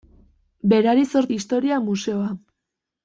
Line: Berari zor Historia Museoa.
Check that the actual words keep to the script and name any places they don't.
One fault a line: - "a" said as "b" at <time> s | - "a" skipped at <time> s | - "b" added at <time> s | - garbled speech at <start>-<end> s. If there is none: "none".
none